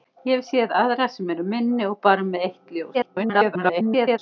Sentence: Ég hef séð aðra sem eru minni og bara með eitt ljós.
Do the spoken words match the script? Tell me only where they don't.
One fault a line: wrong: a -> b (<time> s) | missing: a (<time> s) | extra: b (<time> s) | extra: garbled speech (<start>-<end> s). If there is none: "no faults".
extra: garbled speech (2.9-4.2 s)